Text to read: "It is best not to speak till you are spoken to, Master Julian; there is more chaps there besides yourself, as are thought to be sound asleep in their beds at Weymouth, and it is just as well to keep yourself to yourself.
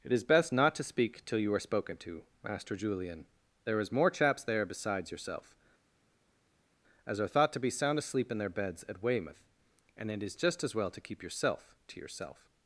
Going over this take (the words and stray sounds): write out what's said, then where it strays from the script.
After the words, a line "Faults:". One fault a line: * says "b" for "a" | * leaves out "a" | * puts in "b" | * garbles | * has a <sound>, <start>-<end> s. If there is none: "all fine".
"It is best not to speak till you are spoken to, Master Julian; there is more chaps there besides yourself, as are thought to be sound asleep in their beds at Weymouth, and it is just as well to keep yourself to yourself.
Faults:
all fine